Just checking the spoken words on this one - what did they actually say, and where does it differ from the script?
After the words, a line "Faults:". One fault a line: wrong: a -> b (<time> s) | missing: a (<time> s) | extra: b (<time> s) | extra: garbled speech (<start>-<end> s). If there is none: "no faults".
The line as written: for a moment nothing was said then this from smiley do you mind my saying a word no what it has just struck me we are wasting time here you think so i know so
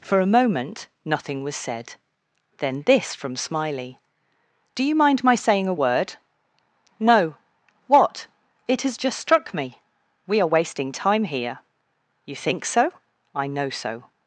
for a moment nothing was said then this from smiley do you mind my saying a word no what it has just struck me we are wasting time here you think so i know so
Faults:
no faults